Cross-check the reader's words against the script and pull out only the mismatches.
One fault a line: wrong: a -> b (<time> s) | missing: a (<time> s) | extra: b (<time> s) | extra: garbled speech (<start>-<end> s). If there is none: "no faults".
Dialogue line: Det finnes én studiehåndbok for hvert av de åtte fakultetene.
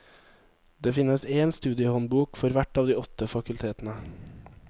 no faults